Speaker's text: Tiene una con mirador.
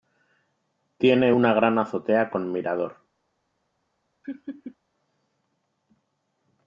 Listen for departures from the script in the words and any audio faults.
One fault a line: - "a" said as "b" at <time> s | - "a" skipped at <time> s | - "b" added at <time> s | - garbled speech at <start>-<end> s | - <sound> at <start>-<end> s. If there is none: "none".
- "gran azotea" added at 1.5 s
- laugh at 4.2-4.8 s